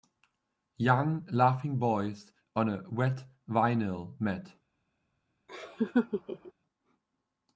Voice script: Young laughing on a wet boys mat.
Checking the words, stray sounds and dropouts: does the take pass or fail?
fail